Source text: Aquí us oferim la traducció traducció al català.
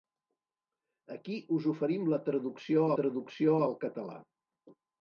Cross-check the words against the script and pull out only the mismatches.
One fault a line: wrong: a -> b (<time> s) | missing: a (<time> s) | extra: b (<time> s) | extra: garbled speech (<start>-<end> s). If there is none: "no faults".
no faults